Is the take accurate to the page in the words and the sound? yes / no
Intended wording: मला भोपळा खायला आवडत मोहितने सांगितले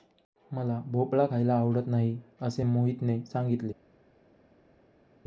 no